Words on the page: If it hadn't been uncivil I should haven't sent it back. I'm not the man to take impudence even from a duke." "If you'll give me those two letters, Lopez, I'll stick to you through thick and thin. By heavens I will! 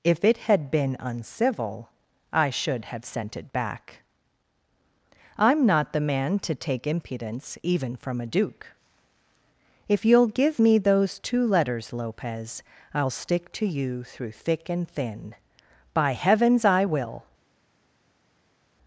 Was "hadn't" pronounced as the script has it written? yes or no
no